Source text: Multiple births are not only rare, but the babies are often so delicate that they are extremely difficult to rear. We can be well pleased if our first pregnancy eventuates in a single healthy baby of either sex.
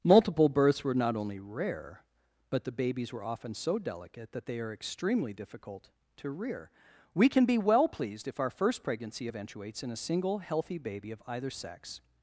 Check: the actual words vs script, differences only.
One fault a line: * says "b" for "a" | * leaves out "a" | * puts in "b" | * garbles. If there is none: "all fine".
* says "were" for "are"
* says "were" for "are"